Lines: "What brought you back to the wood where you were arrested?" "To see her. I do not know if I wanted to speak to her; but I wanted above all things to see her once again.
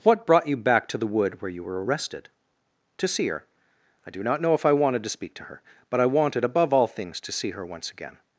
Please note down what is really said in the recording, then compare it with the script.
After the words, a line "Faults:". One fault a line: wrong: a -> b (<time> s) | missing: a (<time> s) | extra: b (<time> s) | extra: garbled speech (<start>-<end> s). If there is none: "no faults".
"What brought you back to the wood where you were arrested?" "To see her. I do not know if I wanted to speak to her; but I wanted above all things to see her once again.
Faults:
no faults